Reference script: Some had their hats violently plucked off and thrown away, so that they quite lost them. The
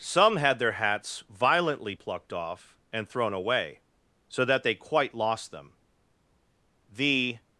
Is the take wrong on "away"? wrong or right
right